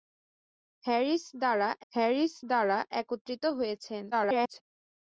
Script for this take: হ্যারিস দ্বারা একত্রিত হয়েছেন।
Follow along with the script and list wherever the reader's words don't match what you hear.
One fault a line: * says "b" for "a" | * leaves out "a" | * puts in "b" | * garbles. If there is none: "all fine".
* puts in "হ্যারিস দ্বারা"
* garbles